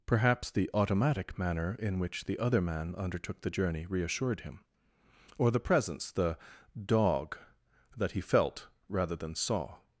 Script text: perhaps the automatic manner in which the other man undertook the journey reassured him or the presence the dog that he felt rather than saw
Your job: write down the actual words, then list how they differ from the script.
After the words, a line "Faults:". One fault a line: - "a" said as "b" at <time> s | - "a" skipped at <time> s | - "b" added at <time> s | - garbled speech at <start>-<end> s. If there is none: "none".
perhaps the automatic manner in which the other man undertook the journey reassured him or the presence the dog that he felt rather than saw
Faults:
none